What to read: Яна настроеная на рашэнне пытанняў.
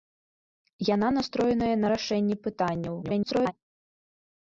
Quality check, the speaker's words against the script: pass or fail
fail